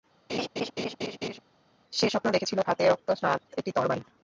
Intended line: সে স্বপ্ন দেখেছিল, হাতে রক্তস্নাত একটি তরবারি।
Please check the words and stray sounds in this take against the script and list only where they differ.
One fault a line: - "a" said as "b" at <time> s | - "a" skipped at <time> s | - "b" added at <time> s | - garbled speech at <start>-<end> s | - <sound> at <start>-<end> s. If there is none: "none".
- laugh at 0.3-1.4 s